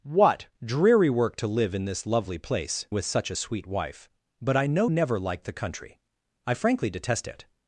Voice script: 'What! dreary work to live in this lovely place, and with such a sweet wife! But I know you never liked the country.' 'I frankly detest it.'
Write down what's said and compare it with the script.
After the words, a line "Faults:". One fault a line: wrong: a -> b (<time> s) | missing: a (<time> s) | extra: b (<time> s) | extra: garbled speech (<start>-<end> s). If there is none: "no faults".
'What! dreary work to live in this lovely place, with such a sweet wife! But I know never liked the country.' 'I frankly detest it.'
Faults:
missing: and (2.9 s)
missing: you (4.9 s)